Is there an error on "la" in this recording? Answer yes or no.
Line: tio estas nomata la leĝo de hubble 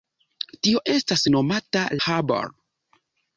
yes